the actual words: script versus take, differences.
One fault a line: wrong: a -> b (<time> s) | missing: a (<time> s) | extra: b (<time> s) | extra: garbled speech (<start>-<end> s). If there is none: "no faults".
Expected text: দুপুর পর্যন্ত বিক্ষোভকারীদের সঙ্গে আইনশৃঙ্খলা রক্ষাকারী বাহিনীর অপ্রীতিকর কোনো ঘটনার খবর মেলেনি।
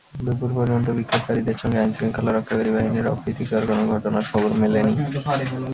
no faults